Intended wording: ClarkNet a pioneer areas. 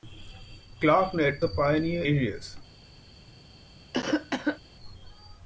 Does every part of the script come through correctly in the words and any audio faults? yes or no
no